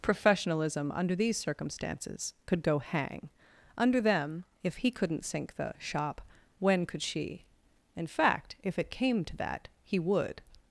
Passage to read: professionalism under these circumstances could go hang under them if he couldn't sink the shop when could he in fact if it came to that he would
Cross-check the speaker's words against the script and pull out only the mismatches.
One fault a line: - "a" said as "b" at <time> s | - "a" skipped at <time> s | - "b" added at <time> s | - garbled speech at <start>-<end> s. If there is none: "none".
- "he" said as "she" at 7.0 s